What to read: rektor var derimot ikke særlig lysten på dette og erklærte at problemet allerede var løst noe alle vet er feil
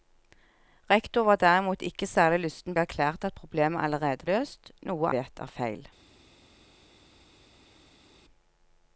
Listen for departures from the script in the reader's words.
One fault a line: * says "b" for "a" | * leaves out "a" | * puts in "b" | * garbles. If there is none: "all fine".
* leaves out "på dette og"
* leaves out "var"
* leaves out "alle"